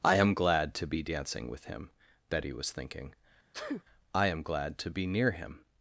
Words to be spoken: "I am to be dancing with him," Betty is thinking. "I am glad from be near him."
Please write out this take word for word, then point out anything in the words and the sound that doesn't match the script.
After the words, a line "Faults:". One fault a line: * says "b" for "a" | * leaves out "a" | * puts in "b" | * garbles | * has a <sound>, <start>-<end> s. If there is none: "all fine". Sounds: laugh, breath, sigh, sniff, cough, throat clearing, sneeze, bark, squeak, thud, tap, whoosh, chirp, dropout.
"I am glad to be dancing with him," Betty was thinking. "I am glad to be near him."
Faults:
* puts in "glad"
* says "was" for "is"
* has a sneeze, 3.5-3.8 s
* says "to" for "from"